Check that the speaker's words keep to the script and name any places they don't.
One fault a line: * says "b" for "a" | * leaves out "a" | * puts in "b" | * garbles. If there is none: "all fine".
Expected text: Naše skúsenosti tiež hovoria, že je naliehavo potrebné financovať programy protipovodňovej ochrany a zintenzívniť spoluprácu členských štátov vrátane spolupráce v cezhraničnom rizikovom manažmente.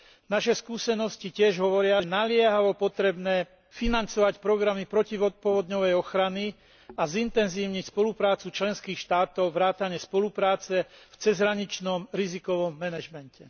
* leaves out "že"